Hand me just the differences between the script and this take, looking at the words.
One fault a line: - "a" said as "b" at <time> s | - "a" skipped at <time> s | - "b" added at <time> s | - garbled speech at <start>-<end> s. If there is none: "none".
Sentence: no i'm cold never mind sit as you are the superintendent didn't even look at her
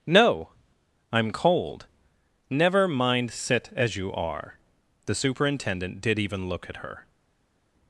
- "didn't" said as "did" at 6.0 s